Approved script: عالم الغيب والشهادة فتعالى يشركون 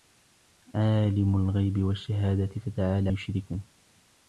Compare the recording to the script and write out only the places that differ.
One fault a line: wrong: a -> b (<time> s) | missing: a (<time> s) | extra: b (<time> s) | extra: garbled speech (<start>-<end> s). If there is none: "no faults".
no faults